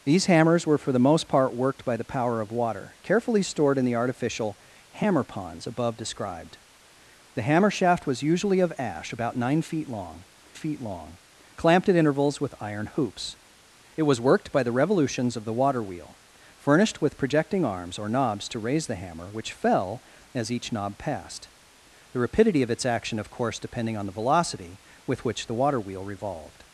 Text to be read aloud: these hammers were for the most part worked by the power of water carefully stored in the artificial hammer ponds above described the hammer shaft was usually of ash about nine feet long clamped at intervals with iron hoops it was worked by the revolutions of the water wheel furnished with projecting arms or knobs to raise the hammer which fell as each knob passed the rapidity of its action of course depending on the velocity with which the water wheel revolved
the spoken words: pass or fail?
fail